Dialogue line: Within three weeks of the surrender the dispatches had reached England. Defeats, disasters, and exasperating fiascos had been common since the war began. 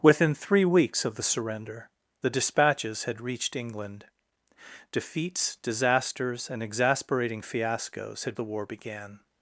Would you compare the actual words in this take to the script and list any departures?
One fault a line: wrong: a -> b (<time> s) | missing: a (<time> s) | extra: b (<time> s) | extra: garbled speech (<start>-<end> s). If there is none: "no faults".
missing: been common since (8.3 s)